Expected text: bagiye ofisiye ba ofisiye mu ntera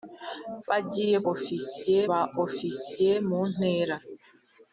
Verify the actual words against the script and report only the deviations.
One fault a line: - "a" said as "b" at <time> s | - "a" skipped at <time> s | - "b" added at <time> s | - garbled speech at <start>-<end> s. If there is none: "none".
none